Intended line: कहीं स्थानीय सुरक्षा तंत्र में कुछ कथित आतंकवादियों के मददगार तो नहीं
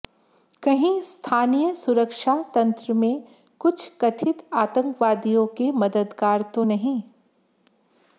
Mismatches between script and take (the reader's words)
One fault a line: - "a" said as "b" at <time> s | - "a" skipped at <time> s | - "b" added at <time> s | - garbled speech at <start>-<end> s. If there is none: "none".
none